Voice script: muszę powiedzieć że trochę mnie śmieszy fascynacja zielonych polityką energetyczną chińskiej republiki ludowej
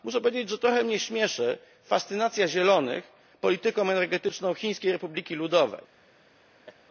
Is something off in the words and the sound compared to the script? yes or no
yes